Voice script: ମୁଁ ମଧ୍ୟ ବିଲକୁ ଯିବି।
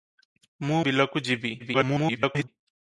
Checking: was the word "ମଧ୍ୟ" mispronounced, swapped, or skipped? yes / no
yes